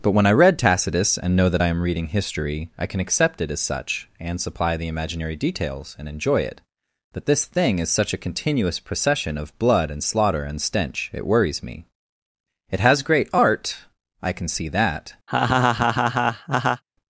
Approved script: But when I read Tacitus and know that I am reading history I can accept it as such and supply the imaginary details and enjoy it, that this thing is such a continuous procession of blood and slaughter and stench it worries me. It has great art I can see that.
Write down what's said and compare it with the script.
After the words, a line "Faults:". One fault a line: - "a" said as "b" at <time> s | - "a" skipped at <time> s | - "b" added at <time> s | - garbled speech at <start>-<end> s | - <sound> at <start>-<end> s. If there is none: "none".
But when I read Tacitus and know that I am reading history I can accept it as such and supply the imaginary details and enjoy it, that this thing is such a continuous procession of blood and slaughter and stench it worries me. It has great art I can see that.
Faults:
- laugh at 15.3-16.8 s